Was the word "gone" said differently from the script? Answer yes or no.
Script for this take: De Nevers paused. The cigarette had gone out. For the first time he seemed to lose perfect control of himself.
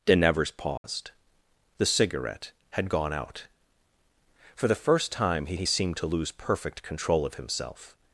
no